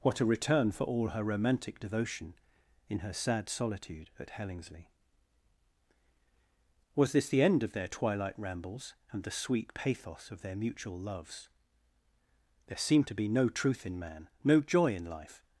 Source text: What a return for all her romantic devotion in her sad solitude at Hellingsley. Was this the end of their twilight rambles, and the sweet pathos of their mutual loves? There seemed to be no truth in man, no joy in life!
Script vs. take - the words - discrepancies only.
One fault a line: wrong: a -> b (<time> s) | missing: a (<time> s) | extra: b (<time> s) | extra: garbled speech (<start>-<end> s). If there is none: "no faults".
no faults